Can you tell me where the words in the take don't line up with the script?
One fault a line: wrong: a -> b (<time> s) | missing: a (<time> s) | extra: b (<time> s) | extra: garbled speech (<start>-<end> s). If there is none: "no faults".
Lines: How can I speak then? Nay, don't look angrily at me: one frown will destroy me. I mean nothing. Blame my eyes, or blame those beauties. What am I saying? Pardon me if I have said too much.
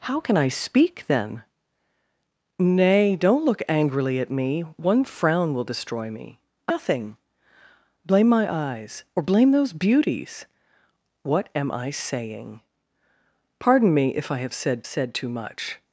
missing: mean (6.7 s)
extra: said (14.9 s)